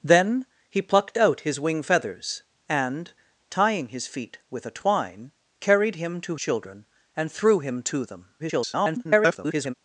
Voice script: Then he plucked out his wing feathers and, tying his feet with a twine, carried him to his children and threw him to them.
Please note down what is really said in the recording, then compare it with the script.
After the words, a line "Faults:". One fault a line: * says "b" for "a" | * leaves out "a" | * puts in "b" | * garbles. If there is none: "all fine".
Then he plucked out his wing feathers and, tying his feet with a twine, carried him to children and threw him to them. [garbled]
Faults:
* leaves out "his"
* garbles